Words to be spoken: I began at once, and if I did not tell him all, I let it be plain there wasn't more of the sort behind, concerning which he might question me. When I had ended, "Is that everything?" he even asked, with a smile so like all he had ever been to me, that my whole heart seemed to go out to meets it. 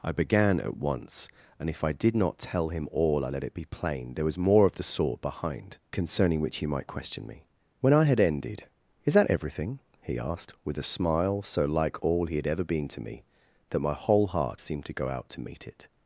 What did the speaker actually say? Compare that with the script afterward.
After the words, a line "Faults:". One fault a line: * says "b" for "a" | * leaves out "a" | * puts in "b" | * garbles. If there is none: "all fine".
I began at once, and if I did not tell him all, I let it be plain there was more of the sort behind, concerning which he might question me. When I had ended, "Is that everything?" he asked, with a smile so like all he had ever been to me, that my whole heart seemed to go out to meet it.
Faults:
* says "was" for "wasn't"
* leaves out "even"
* says "meet" for "meets"